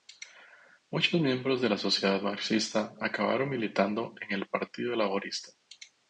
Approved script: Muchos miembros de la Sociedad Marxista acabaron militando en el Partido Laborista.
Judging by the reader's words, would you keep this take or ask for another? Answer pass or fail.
pass